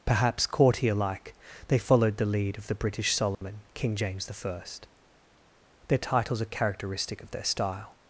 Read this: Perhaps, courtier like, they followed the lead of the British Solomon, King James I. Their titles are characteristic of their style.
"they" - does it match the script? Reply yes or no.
yes